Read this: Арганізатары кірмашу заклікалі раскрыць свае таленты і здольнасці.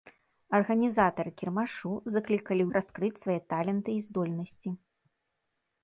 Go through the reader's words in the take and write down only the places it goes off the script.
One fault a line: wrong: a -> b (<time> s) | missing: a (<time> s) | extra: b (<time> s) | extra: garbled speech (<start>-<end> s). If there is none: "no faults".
no faults